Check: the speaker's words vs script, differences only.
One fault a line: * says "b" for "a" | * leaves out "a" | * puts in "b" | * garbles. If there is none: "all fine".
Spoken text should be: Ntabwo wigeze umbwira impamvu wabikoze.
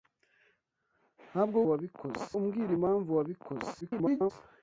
* says "wabikoze" for "wigeze"
* garbles